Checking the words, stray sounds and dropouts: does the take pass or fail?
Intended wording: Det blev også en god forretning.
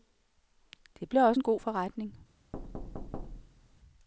fail